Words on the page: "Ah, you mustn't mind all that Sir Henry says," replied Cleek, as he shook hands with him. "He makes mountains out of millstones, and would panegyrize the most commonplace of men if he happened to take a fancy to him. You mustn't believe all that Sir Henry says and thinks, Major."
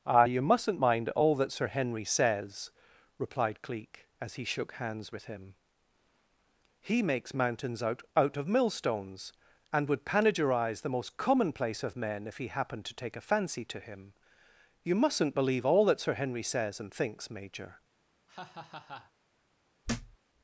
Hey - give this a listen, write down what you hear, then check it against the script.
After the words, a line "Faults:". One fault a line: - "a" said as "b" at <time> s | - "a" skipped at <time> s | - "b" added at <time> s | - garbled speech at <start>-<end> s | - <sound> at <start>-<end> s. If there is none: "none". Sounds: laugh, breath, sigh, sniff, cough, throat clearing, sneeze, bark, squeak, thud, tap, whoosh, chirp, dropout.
"Ah, you mustn't mind all that Sir Henry says," replied Cleek, as he shook hands with him. "He makes mountains out out of millstones, and would panegyrize the most commonplace of men if he happened to take a fancy to him. You mustn't believe all that Sir Henry says and thinks, Major."
Faults:
- "out" added at 8.2 s
- laugh at 18.3-19.1 s
- thud at 19.8-20.2 s